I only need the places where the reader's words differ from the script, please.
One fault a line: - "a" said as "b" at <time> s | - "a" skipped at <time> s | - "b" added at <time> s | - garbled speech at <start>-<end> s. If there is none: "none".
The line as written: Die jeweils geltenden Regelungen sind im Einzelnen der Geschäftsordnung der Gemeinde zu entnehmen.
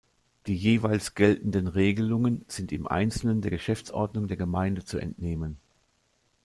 none